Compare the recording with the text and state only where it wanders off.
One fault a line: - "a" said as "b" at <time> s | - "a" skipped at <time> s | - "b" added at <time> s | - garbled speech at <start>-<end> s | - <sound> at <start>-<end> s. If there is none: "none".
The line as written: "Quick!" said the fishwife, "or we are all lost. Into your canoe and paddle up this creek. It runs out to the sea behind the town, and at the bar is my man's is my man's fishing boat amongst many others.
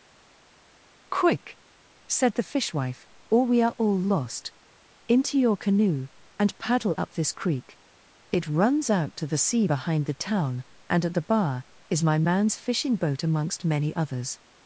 - "is my man's" skipped at 12.6 s